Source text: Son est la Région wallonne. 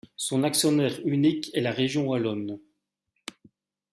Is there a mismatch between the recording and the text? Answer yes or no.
yes